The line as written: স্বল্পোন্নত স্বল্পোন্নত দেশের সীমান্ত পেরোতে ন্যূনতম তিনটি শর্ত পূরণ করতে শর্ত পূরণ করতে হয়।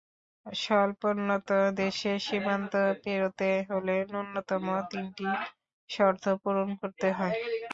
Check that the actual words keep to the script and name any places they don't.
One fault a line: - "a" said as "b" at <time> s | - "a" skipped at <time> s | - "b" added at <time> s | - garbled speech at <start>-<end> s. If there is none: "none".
- "স্বল্পোন্নত" skipped at 1.5 s
- "হলে" added at 3.7 s
- "শর্ত পূরণ করতে" skipped at 7.1 s